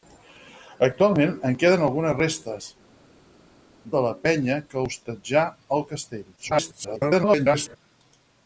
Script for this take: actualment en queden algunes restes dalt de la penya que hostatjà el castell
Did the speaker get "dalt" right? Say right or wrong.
wrong